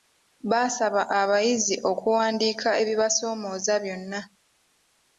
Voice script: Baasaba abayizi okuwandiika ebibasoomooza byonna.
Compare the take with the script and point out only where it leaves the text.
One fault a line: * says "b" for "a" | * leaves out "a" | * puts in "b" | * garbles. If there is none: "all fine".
all fine